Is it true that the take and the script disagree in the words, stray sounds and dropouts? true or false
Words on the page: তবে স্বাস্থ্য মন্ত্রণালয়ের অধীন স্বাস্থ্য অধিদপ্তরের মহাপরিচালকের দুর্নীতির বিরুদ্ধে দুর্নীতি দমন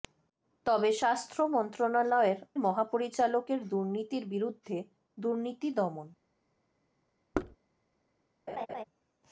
true